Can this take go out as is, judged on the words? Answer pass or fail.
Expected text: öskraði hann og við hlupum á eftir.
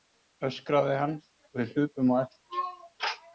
pass